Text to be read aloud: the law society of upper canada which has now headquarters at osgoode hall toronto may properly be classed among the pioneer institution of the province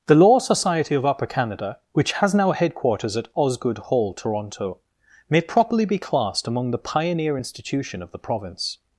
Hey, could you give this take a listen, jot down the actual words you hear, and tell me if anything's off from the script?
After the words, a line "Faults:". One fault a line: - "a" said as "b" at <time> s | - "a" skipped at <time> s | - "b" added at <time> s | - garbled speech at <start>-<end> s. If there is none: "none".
the law society of upper canada which has now headquarters at osgoode hall toronto may properly be classed among the pioneer institution of the province
Faults:
none